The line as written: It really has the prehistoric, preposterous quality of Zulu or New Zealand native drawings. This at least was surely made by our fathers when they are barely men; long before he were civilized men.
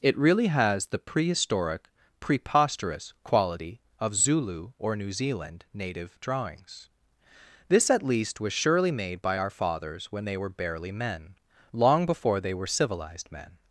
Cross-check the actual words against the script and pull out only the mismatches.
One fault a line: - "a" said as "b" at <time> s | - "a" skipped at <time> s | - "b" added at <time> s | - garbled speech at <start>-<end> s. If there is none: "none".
- "are" said as "were" at 10.4 s
- "he" said as "they" at 12.4 s